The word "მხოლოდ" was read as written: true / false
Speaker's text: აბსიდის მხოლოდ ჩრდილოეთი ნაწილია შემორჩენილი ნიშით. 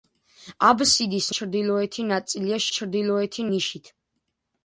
false